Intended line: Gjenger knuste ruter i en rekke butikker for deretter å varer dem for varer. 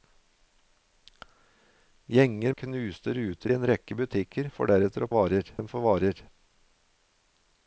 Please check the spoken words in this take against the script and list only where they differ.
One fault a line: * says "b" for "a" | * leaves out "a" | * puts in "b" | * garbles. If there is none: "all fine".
all fine